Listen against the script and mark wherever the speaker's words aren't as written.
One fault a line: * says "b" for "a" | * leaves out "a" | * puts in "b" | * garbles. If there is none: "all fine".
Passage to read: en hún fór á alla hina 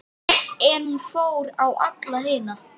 all fine